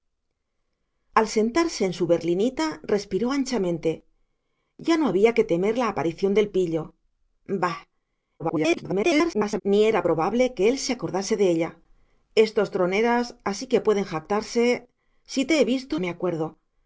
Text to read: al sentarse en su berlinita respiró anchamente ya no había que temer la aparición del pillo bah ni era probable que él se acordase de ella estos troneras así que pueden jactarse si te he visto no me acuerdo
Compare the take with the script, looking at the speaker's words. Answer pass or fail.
fail